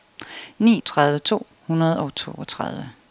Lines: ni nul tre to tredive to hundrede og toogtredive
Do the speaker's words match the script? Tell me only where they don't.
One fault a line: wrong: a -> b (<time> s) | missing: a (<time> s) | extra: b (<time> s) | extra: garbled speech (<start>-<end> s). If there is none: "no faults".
missing: nul tre to (0.8 s)